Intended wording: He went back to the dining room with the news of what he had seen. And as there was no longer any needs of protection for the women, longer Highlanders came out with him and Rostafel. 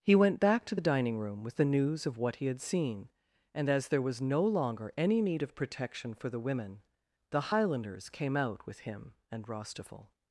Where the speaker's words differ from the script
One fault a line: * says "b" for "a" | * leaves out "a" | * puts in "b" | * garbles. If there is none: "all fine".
* says "need" for "needs"
* says "the" for "longer"